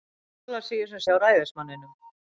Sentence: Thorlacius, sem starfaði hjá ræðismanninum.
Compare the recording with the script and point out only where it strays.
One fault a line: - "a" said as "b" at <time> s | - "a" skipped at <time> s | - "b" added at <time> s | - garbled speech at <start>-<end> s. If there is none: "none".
- "starfaði" skipped at 1.0 s